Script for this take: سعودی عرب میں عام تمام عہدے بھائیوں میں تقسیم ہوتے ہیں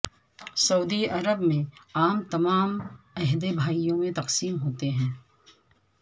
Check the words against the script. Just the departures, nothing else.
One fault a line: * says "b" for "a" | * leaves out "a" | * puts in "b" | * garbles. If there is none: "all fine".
all fine